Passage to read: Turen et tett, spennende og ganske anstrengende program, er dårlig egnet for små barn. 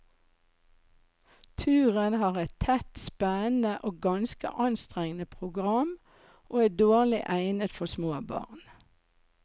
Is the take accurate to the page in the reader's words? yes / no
no